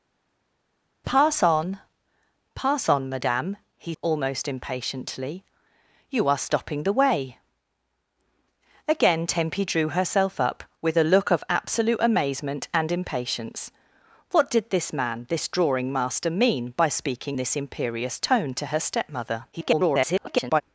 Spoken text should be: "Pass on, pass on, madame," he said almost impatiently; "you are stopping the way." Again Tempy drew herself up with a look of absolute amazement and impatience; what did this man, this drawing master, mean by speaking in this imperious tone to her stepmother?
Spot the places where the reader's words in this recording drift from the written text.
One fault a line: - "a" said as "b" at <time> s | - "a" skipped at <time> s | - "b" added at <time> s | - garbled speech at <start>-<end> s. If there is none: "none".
- "said" skipped at 3.9 s
- "in" skipped at 17.4 s
- garbled speech at 19.5-20.6 s